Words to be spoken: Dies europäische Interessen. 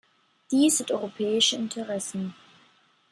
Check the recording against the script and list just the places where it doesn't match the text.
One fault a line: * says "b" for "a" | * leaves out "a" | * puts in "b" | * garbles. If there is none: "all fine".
* puts in "sind"